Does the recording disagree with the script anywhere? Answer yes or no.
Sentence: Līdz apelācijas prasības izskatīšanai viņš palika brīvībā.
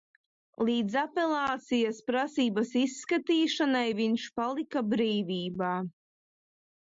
no